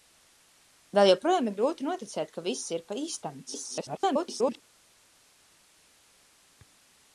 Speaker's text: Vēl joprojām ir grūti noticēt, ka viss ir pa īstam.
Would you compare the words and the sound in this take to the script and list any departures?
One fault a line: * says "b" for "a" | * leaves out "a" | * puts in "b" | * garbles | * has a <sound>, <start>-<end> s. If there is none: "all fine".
* garbles